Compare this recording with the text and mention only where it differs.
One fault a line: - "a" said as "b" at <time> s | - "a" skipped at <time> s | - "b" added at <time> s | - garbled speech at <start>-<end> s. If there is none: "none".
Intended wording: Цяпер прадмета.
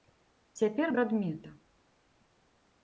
none